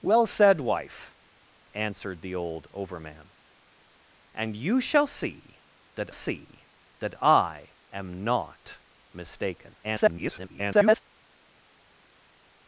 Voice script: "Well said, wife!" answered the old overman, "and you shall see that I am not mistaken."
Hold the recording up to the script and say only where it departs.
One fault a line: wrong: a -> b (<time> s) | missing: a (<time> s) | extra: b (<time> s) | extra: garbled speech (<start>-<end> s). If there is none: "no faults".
extra: see that (6.1 s)
extra: garbled speech (9.8-11.0 s)